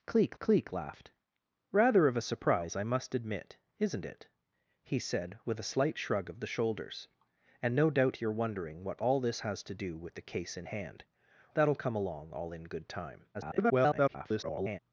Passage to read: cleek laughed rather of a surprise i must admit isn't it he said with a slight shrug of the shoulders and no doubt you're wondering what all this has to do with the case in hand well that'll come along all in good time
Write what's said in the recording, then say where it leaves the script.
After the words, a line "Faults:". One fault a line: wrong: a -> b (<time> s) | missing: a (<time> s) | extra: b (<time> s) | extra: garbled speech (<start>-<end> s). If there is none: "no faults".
cleek cleek laughed rather of a surprise i must admit isn't it he said with a slight shrug of the shoulders and no doubt you're wondering what all this has to do with the case in hand that'll come along all in good time [garbled]
Faults:
extra: cleek (0.4 s)
missing: well (11.0 s)
extra: garbled speech (13.3-14.8 s)